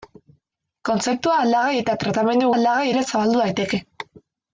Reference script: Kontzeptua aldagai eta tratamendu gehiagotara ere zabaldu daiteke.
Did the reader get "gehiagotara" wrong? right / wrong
wrong